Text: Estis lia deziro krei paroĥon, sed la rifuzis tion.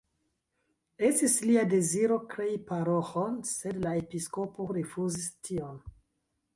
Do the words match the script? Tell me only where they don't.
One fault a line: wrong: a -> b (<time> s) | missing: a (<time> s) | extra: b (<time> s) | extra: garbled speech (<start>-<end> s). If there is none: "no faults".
extra: episkopo (4.0 s)